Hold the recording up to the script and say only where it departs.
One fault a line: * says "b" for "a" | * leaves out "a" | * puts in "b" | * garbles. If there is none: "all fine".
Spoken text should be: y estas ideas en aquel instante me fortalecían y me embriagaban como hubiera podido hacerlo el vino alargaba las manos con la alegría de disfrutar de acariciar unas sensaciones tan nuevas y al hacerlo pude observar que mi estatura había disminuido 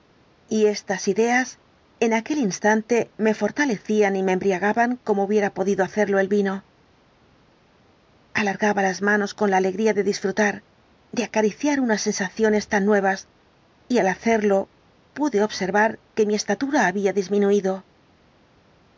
all fine